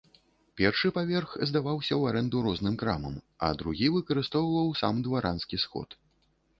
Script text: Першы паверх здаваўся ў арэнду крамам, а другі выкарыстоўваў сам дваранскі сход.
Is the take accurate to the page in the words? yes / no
no